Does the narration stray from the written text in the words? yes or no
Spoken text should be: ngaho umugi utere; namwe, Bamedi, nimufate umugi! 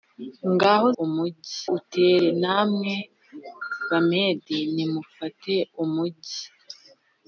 no